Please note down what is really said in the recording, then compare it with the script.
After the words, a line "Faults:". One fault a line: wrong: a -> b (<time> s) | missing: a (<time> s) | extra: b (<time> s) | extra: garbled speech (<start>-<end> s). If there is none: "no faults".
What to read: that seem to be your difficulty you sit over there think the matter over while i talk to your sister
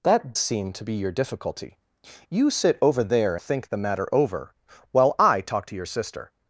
that seem to be your difficulty you sit over there think the matter over while i talk to your sister
Faults:
no faults